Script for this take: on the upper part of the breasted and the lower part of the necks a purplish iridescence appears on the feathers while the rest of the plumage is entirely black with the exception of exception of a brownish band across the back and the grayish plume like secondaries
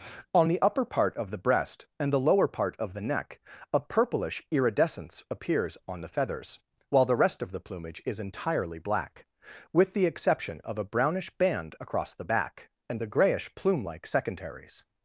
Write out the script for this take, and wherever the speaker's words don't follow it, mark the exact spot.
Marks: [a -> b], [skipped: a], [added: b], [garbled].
on the upper part of the [breasted -> breast] and the lower part of the [necks -> neck] a purplish iridescence appears on the feathers while the rest of the plumage is entirely black with the exception of [skipped: exception of] a brownish band across the back and the grayish plume like secondaries